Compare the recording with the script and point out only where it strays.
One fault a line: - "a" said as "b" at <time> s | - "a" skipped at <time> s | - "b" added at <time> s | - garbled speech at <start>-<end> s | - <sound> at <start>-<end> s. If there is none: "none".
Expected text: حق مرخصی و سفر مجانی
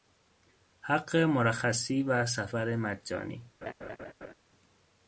- laugh at 3.6-4.3 s